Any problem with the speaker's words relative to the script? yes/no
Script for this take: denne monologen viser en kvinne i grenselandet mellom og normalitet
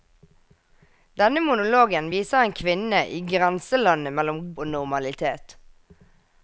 no